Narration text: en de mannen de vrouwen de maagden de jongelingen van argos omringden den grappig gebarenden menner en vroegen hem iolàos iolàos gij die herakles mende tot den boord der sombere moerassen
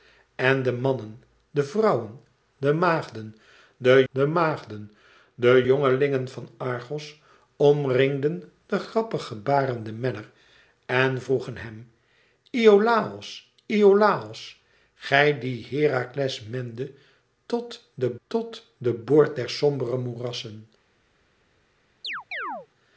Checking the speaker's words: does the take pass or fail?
fail